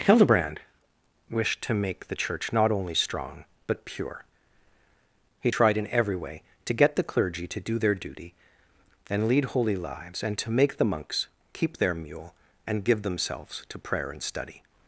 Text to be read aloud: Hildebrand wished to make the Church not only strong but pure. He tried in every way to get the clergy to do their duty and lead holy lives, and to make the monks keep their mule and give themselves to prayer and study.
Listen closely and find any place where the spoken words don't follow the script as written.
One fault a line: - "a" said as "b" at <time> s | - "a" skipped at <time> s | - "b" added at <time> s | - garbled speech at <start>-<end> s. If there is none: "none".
none